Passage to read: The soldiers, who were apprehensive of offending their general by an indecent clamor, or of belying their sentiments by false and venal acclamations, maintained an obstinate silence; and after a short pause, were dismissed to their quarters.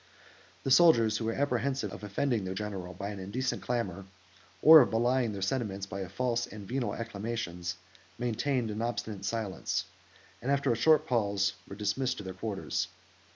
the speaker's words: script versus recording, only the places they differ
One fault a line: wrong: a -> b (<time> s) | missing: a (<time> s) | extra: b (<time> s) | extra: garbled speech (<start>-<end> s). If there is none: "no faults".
no faults